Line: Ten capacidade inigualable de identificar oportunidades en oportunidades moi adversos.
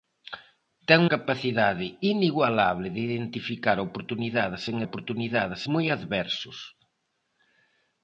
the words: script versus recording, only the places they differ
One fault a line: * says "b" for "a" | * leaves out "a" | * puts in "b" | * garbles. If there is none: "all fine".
all fine